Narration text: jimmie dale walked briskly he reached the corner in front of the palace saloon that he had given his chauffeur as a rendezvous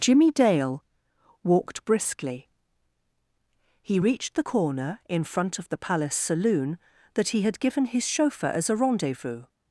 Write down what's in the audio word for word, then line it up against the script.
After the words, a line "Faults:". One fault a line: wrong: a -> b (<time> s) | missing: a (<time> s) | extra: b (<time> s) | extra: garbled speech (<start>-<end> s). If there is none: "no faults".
jimmie dale walked briskly he reached the corner in front of the palace saloon that he had given his chauffeur as a rendezvous
Faults:
no faults